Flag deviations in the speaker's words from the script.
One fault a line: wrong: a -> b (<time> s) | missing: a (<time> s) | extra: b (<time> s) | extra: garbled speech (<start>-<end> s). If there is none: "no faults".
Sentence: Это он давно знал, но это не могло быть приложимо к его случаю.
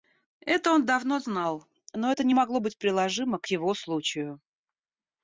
no faults